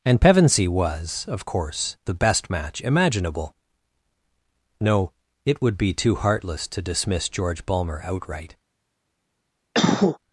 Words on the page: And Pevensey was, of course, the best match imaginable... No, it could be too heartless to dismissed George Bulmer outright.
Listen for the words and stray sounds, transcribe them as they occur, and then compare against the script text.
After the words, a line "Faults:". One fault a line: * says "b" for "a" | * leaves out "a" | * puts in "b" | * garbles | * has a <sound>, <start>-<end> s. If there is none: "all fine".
And Pevensey was, of course, the best match imaginable... No, it would be too heartless to dismiss George Bulmer outright.
Faults:
* says "would" for "could"
* says "dismiss" for "dismissed"
* has a cough, 9.7-10.2 s